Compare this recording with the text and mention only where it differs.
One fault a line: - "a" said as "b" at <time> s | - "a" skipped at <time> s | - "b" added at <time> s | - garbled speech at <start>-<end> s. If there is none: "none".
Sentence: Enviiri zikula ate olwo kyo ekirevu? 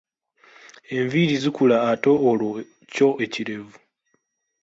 none